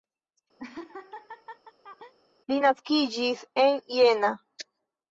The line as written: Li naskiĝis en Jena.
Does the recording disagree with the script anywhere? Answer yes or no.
no